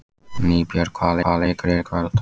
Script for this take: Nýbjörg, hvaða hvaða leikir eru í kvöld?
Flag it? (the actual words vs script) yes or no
no